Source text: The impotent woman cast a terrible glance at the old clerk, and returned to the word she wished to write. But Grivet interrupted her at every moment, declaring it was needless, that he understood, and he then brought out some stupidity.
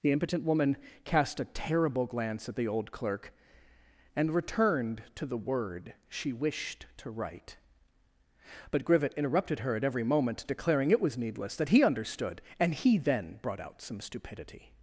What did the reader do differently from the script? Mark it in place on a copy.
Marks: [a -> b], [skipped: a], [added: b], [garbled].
The impotent woman cast a terrible glance at the old clerk, and returned to the word she wished to write. But Grivet interrupted her at every moment, declaring it was needless, that he understood, and he then brought out some stupidity.